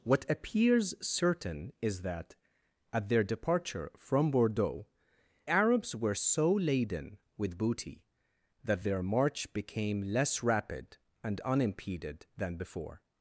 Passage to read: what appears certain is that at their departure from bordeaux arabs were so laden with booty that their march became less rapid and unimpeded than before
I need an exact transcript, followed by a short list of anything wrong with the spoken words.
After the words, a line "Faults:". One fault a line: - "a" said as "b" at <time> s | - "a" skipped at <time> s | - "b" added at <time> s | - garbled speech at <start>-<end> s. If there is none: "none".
what appears certain is that at their departure from bordeaux arabs were so laden with booty that their march became less rapid and unimpeded than before
Faults:
none